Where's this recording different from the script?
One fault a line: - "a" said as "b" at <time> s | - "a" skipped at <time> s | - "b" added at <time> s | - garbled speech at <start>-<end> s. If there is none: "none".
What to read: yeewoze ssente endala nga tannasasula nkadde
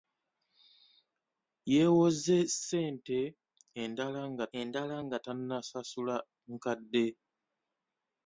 - "endala nga" added at 4.6 s